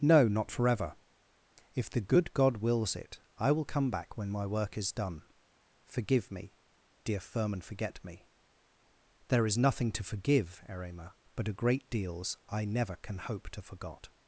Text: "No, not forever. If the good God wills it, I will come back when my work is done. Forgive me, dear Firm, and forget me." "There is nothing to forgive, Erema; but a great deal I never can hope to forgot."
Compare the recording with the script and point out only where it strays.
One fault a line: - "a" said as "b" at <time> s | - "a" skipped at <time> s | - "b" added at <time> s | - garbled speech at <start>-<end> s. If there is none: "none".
- "deal" said as "deals" at 11.9 s